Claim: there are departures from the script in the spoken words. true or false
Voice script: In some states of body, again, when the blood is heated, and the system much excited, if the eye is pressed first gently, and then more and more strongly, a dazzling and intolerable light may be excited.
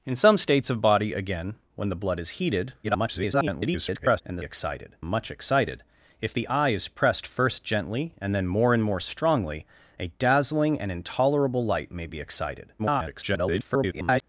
true